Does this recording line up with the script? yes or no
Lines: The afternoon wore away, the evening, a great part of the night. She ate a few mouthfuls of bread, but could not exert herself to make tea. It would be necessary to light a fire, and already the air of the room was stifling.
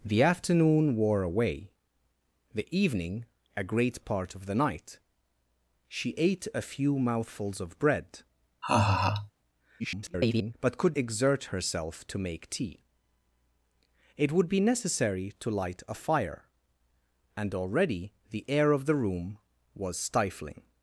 no